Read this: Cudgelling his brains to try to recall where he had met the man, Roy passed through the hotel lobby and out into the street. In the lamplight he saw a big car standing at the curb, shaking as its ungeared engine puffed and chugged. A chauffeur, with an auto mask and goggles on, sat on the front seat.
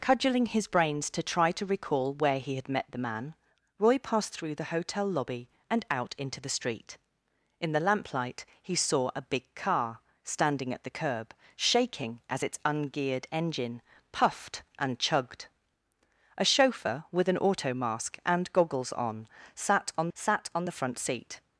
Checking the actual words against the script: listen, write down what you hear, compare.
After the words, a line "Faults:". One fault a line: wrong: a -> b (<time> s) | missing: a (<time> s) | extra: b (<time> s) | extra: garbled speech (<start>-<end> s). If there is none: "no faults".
Cudgelling his brains to try to recall where he had met the man, Roy passed through the hotel lobby and out into the street. In the lamplight he saw a big car standing at the curb, shaking as its ungeared engine puffed and chugged. A chauffeur, with an auto mask and goggles on, sat on sat on the front seat.
Faults:
extra: sat on (20.1 s)